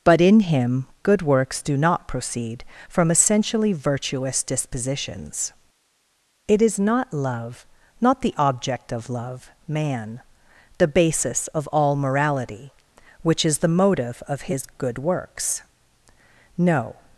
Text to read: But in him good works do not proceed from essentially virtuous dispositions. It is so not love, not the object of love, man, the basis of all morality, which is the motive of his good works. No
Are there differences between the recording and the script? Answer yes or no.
yes